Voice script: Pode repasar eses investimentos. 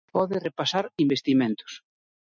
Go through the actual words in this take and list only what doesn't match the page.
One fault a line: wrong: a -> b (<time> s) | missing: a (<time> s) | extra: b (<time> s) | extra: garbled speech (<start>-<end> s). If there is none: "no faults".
missing: eses (0.8 s)